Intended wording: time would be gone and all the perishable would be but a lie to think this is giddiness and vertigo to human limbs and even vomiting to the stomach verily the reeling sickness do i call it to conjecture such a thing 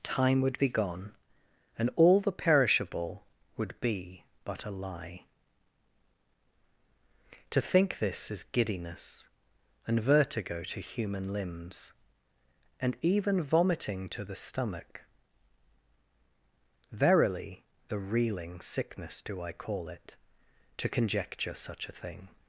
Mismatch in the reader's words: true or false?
false